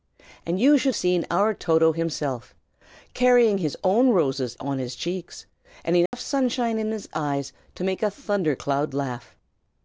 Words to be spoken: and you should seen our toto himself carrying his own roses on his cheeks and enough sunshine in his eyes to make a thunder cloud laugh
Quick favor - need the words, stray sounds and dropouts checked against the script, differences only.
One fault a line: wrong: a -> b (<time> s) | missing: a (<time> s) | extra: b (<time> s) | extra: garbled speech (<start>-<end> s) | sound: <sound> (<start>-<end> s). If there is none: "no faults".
sound: dropout (6.1-6.1 s)